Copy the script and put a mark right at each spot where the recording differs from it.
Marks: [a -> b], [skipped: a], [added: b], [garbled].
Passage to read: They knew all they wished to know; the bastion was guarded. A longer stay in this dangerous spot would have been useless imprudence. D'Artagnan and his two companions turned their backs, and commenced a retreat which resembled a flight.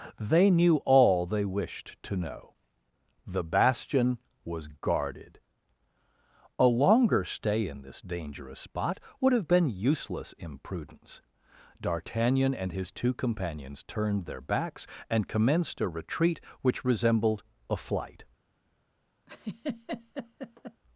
They knew all they wished to know; the bastion was guarded. A longer stay in this dangerous spot would have been useless imprudence. D'Artagnan and his two companions turned their backs, and commenced a retreat which resembled a flight.